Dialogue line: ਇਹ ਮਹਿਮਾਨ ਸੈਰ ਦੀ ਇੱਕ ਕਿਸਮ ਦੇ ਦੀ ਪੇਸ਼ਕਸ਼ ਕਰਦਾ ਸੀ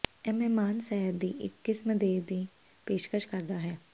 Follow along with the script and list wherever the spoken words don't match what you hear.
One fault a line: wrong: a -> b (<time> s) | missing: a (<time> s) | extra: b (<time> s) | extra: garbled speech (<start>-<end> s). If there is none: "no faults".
wrong: ਸੀ -> ਹੈ (3.6 s)